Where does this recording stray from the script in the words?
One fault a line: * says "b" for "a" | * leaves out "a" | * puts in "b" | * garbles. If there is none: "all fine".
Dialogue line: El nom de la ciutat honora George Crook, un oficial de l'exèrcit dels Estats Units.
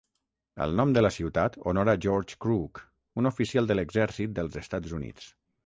all fine